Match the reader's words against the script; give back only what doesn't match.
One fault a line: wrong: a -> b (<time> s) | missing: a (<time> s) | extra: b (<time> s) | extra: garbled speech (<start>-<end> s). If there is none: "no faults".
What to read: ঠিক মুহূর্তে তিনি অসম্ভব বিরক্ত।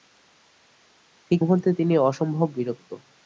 no faults